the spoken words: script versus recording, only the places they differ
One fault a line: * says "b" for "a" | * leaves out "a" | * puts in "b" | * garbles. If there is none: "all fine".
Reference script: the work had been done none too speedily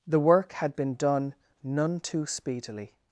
all fine